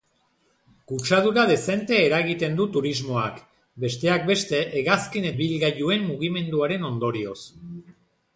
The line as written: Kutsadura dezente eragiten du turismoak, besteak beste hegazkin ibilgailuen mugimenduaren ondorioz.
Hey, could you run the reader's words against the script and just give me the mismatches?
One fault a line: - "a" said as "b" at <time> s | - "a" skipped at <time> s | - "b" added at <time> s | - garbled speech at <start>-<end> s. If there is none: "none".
none